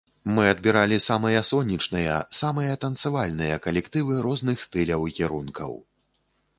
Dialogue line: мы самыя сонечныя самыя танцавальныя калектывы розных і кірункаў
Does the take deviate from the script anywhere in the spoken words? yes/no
yes